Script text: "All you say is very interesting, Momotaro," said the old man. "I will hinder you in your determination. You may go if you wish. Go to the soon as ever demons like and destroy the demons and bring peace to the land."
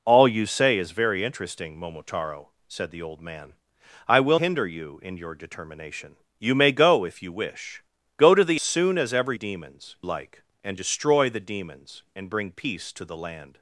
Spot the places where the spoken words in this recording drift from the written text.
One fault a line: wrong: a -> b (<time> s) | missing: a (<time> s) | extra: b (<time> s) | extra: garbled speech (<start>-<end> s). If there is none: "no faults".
no faults